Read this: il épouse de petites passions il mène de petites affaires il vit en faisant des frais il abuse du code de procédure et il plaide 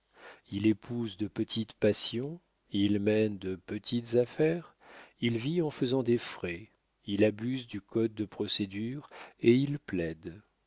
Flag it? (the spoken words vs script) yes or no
no